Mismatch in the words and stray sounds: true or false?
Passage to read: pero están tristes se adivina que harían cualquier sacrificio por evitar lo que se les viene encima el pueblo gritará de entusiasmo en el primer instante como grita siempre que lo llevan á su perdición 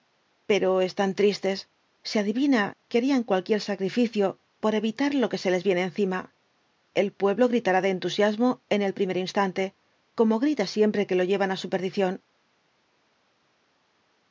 false